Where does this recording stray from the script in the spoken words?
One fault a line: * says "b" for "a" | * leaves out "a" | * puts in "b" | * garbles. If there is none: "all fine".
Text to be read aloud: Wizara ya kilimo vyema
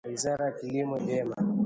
all fine